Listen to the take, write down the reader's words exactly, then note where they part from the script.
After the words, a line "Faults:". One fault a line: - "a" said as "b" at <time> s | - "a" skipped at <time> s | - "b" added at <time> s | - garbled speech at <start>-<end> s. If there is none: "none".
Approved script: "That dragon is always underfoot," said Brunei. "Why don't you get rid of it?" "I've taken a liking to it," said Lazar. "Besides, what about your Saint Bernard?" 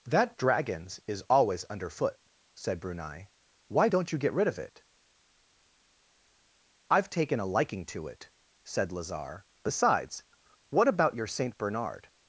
"That dragons is always underfoot," said Brunei. "Why don't you get rid of it?" "I've taken a liking to it," said Lazar. "Besides, what about your Saint Bernard?"
Faults:
- "dragon" said as "dragons" at 0.3 s